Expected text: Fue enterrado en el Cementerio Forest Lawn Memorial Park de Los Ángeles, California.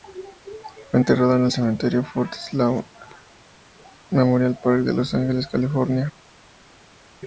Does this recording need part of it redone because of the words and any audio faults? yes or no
no